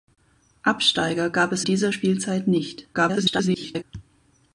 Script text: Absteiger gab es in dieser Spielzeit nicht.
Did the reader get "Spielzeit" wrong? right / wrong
right